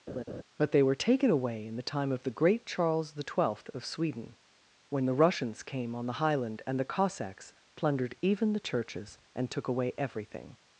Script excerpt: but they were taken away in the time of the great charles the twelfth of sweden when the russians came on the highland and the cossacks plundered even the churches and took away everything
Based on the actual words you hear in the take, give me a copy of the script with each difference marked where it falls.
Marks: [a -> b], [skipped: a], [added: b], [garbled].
but they were taken away in the time of the great charles the twelfth of sweden when the russians came on the highland and the cossacks plundered even the churches and took away everything